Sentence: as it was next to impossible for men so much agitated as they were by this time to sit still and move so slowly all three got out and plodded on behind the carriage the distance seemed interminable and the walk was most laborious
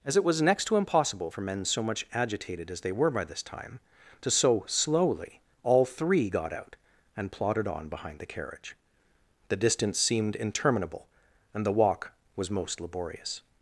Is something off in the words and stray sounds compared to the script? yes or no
yes